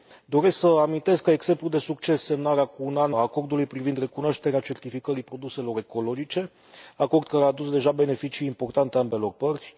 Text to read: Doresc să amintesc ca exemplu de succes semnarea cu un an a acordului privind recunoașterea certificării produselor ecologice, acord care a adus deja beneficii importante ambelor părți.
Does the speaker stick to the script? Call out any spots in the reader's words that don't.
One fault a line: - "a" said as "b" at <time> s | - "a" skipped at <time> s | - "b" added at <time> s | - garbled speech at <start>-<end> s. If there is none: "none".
none